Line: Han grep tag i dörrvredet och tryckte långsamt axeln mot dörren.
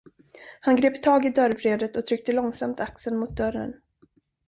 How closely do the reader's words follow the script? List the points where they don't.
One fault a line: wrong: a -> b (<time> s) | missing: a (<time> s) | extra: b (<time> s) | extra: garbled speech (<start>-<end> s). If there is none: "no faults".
no faults